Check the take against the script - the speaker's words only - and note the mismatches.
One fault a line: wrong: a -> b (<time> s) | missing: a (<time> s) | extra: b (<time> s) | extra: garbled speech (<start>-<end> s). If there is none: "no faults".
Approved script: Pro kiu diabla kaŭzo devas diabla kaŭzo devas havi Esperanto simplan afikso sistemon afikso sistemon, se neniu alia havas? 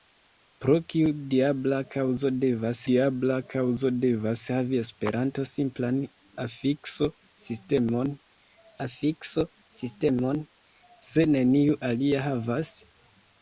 no faults